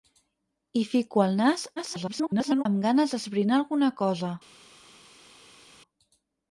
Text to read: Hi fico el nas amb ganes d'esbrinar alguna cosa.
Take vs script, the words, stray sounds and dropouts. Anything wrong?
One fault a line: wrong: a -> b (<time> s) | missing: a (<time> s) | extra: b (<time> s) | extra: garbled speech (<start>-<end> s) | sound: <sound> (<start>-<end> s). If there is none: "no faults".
extra: garbled speech (1.8-2.6 s)